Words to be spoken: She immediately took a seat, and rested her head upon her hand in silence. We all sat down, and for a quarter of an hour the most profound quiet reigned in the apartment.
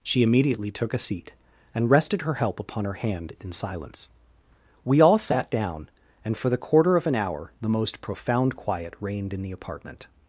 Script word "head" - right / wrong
wrong